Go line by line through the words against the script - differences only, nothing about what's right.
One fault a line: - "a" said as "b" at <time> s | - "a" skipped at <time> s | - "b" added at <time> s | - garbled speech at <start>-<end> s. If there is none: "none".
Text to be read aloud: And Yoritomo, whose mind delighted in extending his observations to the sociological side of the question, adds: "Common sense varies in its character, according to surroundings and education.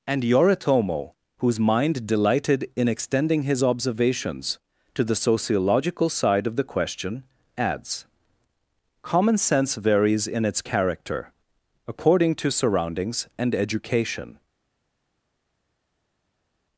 none